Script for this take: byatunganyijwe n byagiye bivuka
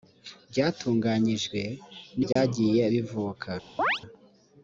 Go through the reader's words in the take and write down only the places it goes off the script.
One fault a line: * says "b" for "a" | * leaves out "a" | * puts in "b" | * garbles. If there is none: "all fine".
all fine